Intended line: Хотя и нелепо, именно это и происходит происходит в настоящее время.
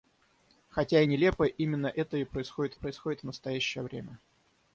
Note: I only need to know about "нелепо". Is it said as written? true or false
true